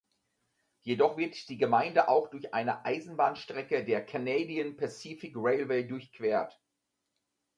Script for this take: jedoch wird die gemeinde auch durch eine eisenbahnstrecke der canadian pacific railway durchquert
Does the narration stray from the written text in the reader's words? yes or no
no